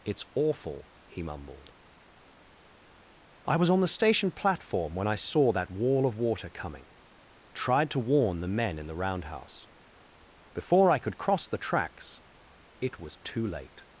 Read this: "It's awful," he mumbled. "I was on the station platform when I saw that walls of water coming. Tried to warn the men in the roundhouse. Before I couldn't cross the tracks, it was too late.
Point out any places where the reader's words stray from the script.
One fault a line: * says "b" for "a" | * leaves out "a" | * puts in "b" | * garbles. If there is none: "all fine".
* says "wall" for "walls"
* says "could" for "couldn't"